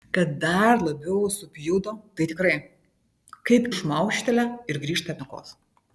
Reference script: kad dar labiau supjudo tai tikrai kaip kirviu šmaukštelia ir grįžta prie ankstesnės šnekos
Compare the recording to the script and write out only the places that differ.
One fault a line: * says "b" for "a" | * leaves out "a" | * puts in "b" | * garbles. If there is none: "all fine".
* leaves out "kirviu"
* leaves out "prie ankstesnės"